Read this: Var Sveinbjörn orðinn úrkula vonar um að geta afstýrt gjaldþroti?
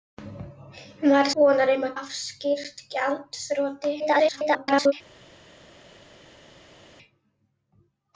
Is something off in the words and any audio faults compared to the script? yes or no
yes